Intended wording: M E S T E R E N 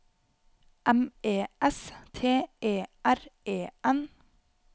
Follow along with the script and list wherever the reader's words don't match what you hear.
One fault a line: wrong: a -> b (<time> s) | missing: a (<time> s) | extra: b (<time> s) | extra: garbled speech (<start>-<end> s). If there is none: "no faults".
no faults